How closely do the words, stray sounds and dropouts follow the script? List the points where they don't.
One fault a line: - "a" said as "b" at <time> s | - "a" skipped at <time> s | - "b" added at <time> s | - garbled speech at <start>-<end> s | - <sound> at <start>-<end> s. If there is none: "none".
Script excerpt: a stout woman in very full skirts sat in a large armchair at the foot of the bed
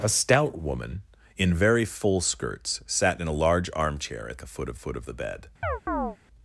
- "foot of" added at 4.7 s
- chirp at 5.6-6.2 s